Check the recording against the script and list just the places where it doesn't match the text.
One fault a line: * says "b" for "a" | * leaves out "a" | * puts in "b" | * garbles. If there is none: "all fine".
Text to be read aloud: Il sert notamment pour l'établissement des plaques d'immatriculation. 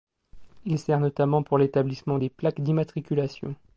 all fine